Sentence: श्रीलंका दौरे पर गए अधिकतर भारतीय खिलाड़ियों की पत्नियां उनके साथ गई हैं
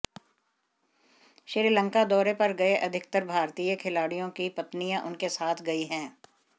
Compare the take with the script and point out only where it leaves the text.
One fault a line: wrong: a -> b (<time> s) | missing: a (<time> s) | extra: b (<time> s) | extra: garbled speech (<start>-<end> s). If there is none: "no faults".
no faults